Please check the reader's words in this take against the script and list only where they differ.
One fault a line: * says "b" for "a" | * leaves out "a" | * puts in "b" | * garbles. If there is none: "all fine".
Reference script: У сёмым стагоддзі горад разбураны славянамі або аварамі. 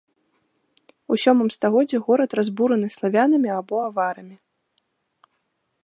all fine